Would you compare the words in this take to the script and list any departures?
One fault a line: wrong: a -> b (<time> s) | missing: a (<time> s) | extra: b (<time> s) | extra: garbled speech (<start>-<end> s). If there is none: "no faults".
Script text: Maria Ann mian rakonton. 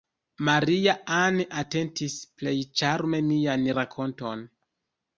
extra: atentis plej ĉarme (1.6 s)